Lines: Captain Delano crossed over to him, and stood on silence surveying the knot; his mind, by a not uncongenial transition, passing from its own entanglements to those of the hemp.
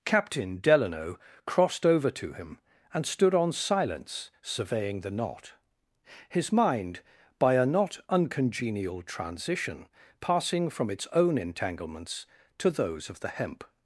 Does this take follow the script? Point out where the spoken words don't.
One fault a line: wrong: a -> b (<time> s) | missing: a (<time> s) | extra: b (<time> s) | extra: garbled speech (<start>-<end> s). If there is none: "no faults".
no faults